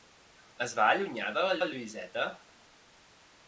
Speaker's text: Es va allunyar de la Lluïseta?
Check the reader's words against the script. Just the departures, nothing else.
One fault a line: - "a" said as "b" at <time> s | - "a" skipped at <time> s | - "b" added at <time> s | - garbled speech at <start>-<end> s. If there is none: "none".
- "la" added at 1.6 s